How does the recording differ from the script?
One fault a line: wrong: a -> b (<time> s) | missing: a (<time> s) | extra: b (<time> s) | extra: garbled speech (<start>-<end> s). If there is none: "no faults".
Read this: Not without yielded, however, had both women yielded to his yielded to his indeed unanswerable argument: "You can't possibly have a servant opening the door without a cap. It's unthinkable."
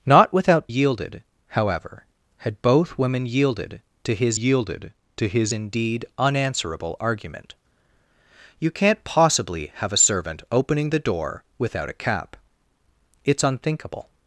no faults